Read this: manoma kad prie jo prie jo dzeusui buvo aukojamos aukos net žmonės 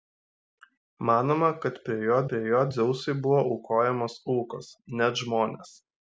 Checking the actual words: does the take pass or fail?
pass